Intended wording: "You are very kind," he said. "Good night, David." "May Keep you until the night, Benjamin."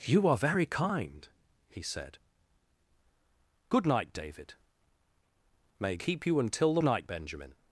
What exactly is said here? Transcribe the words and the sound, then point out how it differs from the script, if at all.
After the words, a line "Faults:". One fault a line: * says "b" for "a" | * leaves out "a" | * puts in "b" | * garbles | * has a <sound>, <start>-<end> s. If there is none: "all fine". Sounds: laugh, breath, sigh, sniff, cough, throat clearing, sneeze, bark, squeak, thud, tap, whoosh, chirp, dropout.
"You are very kind," he said. "Good night, David." "May Keep you until the night, Benjamin."
Faults:
all fine